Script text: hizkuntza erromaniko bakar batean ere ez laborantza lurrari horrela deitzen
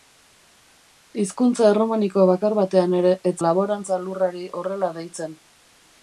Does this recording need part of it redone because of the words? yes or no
no